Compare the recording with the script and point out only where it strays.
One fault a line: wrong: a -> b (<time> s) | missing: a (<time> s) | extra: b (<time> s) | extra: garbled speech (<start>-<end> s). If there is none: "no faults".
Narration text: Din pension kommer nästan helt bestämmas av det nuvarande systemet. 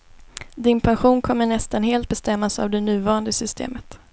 no faults